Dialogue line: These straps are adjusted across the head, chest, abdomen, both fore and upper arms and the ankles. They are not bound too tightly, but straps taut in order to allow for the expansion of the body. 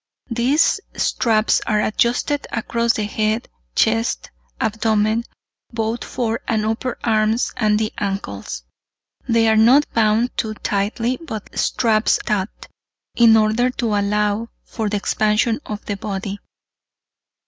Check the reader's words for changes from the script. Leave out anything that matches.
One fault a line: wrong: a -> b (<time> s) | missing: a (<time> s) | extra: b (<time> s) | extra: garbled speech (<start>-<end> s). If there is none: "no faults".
no faults